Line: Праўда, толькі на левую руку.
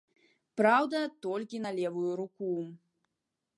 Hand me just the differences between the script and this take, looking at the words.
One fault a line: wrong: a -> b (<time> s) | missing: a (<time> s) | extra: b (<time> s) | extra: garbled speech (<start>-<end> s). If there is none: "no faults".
no faults